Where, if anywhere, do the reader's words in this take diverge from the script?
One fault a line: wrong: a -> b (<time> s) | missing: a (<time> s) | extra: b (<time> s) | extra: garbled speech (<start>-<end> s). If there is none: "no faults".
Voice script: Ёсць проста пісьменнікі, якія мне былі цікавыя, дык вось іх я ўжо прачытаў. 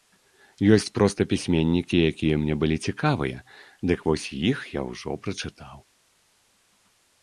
no faults